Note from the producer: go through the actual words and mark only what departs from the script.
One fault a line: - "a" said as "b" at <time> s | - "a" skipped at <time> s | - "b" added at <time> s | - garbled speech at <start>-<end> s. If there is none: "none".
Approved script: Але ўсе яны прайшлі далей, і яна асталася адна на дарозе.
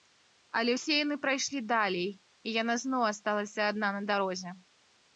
- "зноў" added at 2.9 s